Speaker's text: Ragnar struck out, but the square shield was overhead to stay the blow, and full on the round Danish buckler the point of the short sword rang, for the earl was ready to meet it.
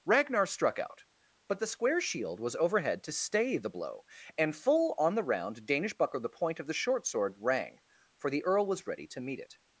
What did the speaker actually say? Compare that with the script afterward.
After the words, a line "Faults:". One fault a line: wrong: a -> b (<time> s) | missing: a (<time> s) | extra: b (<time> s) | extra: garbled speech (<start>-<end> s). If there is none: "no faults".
Ragnar struck out, but the square shield was overhead to stay the blow, and full on the round Danish buckler the point of the short sword rang, for the earl was ready to meet it.
Faults:
no faults